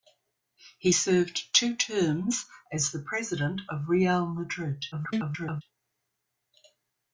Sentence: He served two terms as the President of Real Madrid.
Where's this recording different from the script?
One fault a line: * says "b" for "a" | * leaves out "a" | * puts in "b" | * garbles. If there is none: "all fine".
* garbles